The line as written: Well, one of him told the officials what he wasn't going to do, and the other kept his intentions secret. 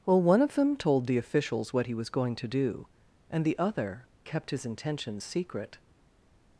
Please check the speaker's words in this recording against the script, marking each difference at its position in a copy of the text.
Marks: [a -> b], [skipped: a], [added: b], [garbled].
Well, one of [him -> them] told the officials what he [wasn't -> was] going to do, and the other kept his intentions secret.